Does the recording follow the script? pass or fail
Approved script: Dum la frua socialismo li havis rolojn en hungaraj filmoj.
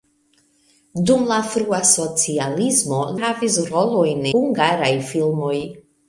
fail